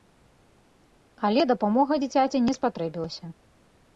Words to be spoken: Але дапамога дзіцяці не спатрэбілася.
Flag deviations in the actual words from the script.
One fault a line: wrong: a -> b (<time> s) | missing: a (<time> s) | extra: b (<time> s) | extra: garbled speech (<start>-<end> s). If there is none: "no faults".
no faults